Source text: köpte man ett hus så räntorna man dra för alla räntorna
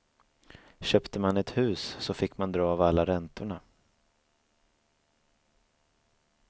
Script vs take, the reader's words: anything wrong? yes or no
yes